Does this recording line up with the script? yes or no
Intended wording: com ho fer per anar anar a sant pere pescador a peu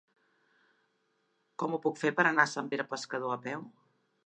no